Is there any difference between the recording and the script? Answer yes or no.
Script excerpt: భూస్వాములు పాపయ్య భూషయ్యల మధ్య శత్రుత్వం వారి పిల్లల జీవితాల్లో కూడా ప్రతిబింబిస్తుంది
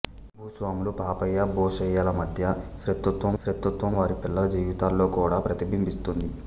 yes